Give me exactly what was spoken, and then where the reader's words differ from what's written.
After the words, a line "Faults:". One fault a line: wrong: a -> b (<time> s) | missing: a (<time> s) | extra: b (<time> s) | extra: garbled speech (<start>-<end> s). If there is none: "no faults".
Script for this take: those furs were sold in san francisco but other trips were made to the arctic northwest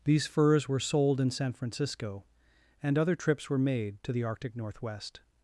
these furs were sold in san francisco and other trips were made to the arctic northwest
Faults:
wrong: those -> these (0.0 s)
wrong: but -> and (2.8 s)